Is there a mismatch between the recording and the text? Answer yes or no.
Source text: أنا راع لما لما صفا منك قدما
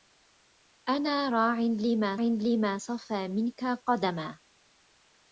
no